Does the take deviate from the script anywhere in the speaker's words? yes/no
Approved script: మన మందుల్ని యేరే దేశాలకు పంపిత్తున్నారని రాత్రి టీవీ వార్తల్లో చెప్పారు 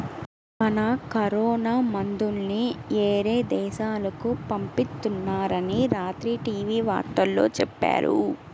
yes